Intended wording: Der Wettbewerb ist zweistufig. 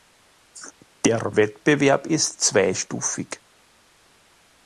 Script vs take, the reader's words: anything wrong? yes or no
no